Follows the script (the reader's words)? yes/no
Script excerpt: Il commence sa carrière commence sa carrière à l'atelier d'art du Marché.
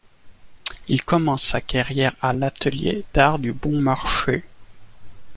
no